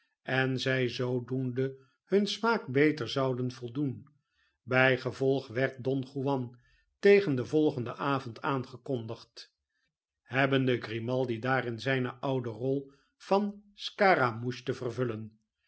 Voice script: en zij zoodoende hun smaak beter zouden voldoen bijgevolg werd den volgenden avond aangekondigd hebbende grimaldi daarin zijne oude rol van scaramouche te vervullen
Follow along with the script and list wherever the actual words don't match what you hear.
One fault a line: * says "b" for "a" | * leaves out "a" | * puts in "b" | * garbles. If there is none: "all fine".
* puts in "don juan tegen"